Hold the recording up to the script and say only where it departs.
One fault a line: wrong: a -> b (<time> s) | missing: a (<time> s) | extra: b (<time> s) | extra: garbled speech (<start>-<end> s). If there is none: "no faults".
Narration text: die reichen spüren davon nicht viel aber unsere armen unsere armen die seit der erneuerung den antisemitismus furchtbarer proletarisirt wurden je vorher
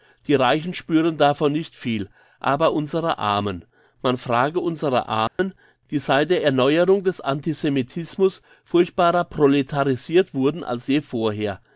extra: man frage (4.0 s)
wrong: den -> des (7.0 s)
extra: als (10.6 s)